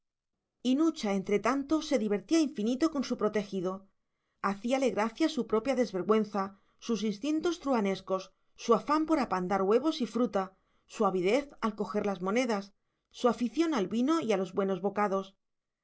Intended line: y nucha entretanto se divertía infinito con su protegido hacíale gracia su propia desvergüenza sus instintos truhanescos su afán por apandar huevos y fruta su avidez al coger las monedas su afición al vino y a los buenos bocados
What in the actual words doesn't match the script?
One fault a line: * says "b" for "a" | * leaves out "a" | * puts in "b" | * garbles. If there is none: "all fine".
all fine